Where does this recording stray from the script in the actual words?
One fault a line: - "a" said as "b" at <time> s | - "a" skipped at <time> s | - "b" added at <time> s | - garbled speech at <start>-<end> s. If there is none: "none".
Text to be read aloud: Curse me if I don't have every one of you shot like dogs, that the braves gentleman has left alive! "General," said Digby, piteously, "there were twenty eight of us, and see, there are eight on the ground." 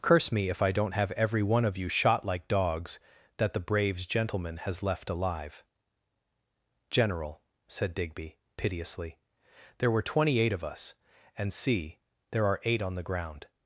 none